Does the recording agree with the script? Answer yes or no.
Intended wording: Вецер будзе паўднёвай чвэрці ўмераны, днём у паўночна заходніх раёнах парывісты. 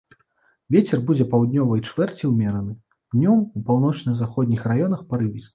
yes